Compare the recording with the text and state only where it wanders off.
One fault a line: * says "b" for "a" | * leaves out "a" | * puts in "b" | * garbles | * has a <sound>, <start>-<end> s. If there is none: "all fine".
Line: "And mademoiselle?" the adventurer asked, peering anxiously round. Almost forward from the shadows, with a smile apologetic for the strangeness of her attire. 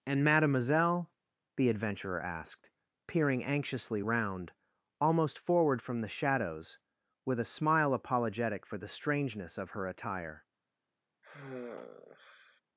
* has a sigh, 11.2-12.6 s